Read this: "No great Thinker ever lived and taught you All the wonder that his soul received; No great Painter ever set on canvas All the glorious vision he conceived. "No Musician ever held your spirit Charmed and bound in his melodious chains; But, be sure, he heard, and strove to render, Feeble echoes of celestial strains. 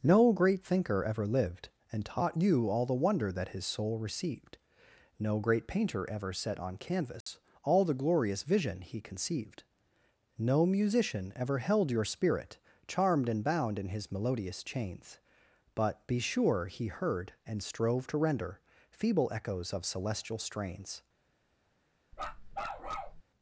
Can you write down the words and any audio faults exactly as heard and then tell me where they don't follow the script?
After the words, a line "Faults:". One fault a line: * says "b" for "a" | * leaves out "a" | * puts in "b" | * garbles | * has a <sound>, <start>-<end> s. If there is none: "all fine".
"No great Thinker ever lived and taught you All the wonder that his soul received; No great Painter ever set on canvas All the glorious vision he conceived. "No Musician ever held your spirit Charmed and bound in his melodious chains; But, be sure, he heard, and strove to render, Feeble echoes of celestial strains.
Faults:
* has a dropout, 7.2-7.3 s
* has a bark, 22.1-23.2 s